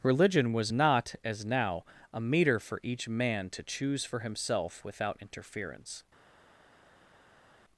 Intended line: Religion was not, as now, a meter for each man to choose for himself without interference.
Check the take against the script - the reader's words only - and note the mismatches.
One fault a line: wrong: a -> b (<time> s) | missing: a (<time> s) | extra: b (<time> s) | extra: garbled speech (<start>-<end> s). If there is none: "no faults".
no faults